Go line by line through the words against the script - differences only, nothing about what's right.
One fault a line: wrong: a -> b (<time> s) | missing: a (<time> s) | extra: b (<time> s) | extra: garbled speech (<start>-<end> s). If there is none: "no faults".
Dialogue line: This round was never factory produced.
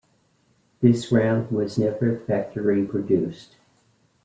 no faults